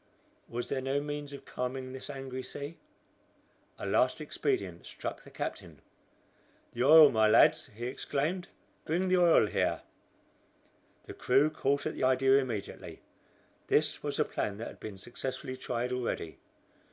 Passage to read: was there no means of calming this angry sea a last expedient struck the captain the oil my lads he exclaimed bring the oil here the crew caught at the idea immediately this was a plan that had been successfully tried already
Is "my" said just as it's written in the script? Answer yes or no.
yes